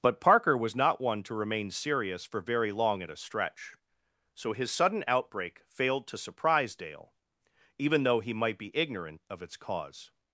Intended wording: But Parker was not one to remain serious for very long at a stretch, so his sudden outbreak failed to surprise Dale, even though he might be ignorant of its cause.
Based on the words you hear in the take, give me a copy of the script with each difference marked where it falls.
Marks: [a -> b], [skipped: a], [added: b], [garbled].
But Parker was not one to remain serious for very long at a stretch, so his sudden outbreak failed to surprise Dale, even though he might be ignorant of its cause.